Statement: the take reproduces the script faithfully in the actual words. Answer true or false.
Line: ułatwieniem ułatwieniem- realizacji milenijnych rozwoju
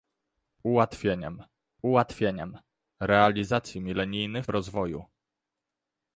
true